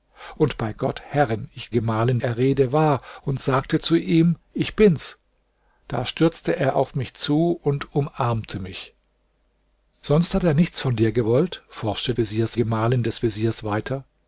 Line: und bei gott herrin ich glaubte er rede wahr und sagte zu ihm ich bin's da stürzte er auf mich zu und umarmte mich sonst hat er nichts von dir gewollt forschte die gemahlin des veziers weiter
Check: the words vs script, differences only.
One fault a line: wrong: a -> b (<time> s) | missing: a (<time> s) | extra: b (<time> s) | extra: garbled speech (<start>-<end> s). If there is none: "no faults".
wrong: glaubte -> gemahlin (1.7 s)
wrong: die -> veziers (12.2 s)